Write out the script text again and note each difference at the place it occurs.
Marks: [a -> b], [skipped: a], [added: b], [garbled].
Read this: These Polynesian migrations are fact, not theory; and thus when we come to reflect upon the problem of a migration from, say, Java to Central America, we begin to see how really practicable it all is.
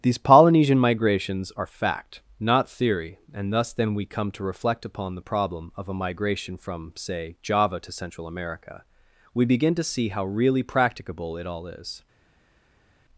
These Polynesian migrations are fact, not theory; and thus [when -> then] we come to reflect upon the problem of a migration from, say, Java to Central America, we begin to see how really practicable it all is.